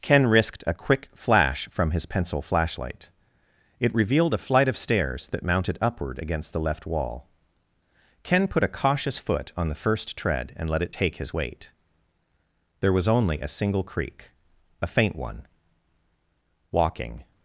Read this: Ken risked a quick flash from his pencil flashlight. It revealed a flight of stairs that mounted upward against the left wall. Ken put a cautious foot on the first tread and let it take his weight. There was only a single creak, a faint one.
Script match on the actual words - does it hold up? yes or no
no